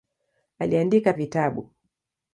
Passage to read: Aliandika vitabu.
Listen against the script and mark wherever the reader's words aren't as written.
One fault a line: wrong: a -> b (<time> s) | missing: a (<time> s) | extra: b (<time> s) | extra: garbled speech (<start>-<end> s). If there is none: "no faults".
no faults